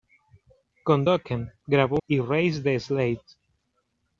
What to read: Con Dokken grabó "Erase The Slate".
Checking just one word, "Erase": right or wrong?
right